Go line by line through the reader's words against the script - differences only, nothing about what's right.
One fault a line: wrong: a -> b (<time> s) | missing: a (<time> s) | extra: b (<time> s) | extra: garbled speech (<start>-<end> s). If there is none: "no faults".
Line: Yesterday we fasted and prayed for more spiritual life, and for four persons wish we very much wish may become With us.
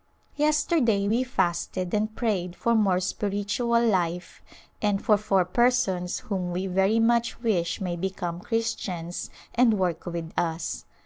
wrong: wish -> whom (6.2 s)
extra: Christians and work (8.4 s)